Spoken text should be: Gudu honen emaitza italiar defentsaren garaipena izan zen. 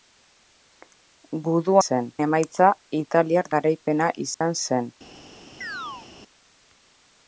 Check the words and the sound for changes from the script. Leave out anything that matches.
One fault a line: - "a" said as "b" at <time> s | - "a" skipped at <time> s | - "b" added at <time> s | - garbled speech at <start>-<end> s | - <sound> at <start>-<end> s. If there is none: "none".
- "honen" said as "zen" at 1.9 s
- "defentsaren" skipped at 3.5 s
- dropout at 4.3-4.4 s
- chirp at 5.6-6.1 s